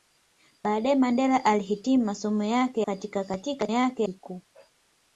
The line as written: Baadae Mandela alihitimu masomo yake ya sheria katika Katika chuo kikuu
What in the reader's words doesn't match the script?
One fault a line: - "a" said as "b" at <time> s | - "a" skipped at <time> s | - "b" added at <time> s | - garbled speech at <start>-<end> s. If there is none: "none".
- "ya sheria" skipped at 2.8 s
- "chuo" said as "yake" at 3.7 s